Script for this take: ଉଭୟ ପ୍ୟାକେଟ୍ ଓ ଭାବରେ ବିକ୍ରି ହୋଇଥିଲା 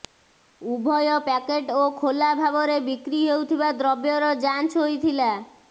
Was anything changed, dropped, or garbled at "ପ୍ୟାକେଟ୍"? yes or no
no